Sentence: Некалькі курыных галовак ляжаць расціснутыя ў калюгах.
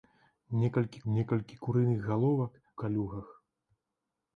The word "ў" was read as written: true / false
false